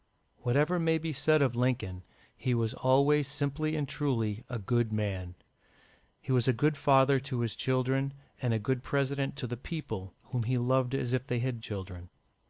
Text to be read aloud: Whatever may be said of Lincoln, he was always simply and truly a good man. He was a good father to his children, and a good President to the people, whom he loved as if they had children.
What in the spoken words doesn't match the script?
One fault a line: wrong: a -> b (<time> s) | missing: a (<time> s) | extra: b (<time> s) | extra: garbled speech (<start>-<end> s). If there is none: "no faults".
no faults